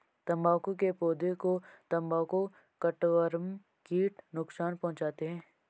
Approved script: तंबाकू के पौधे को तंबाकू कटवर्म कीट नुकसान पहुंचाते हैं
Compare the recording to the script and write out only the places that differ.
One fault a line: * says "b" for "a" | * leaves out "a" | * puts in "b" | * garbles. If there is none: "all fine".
all fine